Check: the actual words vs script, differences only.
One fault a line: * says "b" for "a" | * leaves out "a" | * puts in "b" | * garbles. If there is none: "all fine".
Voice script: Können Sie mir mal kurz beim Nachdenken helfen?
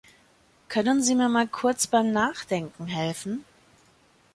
all fine